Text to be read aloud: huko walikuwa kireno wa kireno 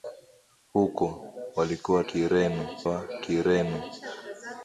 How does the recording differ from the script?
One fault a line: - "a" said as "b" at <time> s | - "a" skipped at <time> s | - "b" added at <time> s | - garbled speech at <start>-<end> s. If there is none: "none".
none